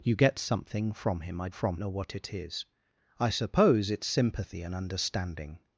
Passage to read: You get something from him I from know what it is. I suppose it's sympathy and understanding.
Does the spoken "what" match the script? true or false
true